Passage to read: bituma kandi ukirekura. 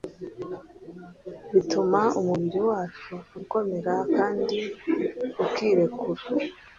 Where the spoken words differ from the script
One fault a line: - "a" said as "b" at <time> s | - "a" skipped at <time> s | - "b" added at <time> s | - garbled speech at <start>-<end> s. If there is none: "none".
- "umubiri wacu ukomera" added at 2.2 s